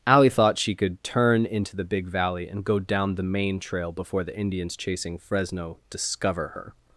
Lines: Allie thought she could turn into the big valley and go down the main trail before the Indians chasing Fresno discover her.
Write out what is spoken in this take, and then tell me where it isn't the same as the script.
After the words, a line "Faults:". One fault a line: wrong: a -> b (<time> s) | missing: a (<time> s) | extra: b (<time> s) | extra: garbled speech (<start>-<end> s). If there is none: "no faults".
Allie thought she could turn into the big valley and go down the main trail before the Indians chasing Fresno discover her.
Faults:
no faults